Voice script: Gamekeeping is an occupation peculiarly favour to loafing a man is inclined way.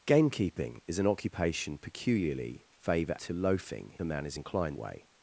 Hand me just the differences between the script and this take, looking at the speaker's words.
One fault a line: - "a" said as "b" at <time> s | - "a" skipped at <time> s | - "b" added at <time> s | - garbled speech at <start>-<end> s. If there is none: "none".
none